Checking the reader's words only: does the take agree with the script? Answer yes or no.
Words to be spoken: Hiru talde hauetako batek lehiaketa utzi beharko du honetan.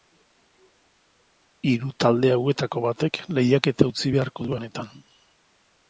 yes